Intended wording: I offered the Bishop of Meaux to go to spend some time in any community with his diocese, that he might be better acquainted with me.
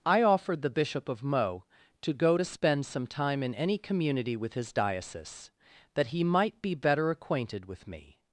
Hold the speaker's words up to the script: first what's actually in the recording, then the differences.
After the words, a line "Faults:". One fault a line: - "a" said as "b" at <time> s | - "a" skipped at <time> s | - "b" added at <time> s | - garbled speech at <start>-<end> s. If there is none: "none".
I offered the Bishop of Meaux to go to spend some time in any community with his diocese, that he might be better acquainted with me.
Faults:
none